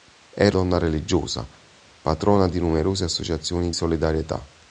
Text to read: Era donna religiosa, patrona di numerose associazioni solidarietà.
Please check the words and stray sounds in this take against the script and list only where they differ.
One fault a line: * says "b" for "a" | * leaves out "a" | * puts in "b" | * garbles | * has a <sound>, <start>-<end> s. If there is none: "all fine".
all fine